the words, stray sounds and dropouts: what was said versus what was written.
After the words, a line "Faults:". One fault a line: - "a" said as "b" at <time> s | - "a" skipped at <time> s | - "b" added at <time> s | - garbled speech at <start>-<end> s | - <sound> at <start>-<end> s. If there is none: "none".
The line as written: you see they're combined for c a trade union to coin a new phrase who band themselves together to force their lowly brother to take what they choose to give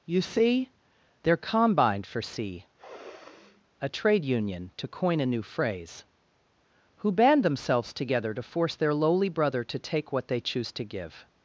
you see they're combined for c a trade union to coin a new phrase who band themselves together to force their lowly brother to take what they choose to give
Faults:
- sniff at 2.8-3.6 s